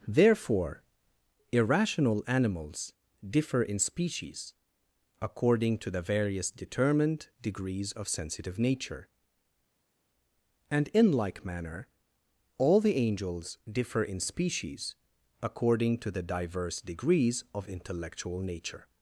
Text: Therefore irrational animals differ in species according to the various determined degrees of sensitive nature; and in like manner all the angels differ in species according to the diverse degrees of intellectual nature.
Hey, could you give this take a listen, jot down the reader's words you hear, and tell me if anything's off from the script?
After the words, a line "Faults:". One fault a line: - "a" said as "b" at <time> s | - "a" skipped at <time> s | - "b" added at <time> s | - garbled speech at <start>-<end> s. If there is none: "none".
Therefore irrational animals differ in species according to the various determined degrees of sensitive nature; and in like manner all the angels differ in species according to the diverse degrees of intellectual nature.
Faults:
none